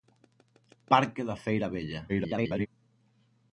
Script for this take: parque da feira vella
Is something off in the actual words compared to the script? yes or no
yes